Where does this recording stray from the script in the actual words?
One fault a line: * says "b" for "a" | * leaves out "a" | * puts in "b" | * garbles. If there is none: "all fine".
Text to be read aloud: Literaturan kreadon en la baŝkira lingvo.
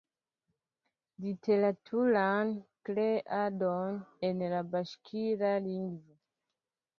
all fine